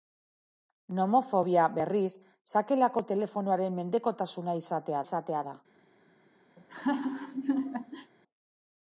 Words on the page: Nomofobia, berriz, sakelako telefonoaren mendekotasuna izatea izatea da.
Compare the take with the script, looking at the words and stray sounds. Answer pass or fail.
fail